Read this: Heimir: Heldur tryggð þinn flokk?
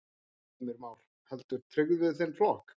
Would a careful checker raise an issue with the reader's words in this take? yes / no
yes